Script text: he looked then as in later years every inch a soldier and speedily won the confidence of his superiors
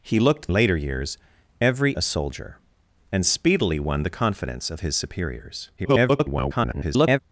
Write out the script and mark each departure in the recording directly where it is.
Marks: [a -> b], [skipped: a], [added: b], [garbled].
he looked [skipped: then as in] later years every [skipped: inch] a soldier and speedily won the confidence of his superiors [garbled]